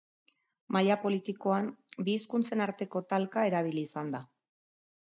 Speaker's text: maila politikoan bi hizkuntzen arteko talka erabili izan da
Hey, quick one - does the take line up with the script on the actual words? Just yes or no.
yes